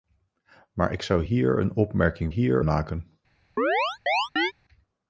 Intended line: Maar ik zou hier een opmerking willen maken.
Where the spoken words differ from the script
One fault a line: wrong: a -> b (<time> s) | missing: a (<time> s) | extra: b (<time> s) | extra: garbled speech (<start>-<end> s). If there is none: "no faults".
wrong: willen -> hier (2.3 s)